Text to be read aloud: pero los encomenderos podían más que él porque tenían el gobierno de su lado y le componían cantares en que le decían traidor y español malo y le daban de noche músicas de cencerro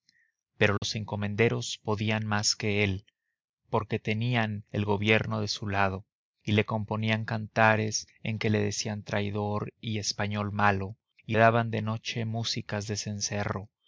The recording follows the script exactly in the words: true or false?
false